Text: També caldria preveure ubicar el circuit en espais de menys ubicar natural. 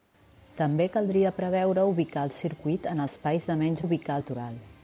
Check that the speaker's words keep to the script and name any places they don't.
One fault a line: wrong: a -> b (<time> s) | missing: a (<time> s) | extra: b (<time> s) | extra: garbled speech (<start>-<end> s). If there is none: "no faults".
no faults